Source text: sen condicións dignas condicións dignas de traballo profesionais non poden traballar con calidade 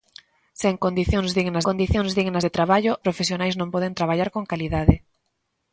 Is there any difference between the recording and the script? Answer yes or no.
no